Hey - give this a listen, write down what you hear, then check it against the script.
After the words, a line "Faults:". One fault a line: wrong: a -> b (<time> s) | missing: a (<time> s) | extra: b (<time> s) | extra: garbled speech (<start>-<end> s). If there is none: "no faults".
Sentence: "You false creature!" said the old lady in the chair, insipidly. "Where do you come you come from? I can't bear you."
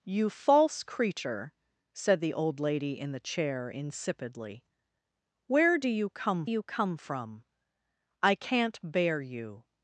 "You false creature!" said the old lady in the chair, insipidly. "Where do you come you come from? I can't bear you."
Faults:
no faults